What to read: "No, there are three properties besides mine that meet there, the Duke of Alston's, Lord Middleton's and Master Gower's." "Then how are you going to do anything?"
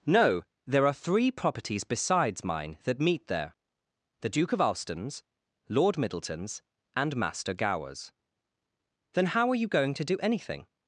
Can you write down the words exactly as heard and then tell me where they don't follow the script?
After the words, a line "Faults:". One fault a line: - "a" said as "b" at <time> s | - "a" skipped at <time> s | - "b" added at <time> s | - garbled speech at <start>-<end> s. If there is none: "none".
"No, there are three properties besides mine that meet there, the Duke of Alston's, Lord Middleton's and Master Gower's." "Then how are you going to do anything?"
Faults:
none